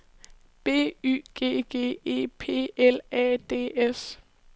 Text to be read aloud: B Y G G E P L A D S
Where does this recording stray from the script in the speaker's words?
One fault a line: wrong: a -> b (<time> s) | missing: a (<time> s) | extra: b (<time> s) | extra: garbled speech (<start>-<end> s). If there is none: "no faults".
no faults